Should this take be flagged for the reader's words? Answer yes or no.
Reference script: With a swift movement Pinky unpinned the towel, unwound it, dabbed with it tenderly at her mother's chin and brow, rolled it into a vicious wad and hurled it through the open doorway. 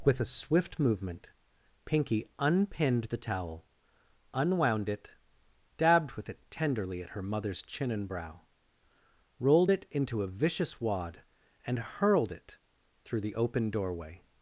no